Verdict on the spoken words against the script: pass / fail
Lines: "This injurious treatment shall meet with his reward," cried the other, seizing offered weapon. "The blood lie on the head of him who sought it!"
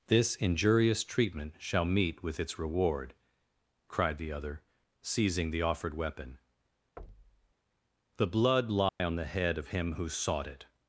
fail